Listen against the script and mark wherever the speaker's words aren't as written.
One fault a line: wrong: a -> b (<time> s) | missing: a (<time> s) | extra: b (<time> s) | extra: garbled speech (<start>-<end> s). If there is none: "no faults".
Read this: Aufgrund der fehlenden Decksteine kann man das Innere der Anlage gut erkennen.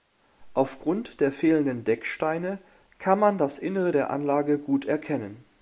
no faults